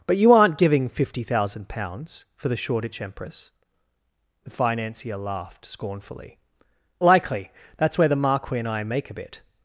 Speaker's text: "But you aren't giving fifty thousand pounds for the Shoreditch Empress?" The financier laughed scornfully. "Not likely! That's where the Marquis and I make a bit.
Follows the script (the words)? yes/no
no